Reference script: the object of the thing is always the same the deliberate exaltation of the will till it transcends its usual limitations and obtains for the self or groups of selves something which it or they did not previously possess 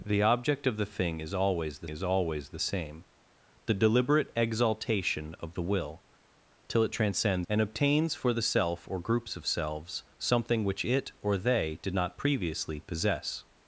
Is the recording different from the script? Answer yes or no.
yes